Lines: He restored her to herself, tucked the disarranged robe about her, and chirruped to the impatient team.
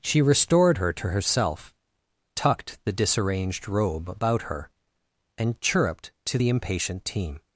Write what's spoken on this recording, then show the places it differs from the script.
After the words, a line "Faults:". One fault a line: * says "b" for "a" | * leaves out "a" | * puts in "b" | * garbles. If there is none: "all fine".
She restored her to herself, tucked the disarranged robe about her, and chirruped to the impatient team.
Faults:
* says "She" for "He"